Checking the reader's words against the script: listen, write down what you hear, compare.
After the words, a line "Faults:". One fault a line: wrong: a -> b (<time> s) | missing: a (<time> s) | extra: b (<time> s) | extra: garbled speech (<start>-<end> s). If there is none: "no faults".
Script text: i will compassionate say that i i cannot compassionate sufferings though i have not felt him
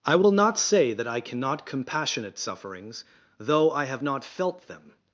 i will not say that i cannot compassionate sufferings though i have not felt them
Faults:
wrong: compassionate -> not (0.3 s)
missing: i (1.2 s)
wrong: him -> them (4.7 s)